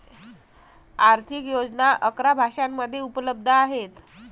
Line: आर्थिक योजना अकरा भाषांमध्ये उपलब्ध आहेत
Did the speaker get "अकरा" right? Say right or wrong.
right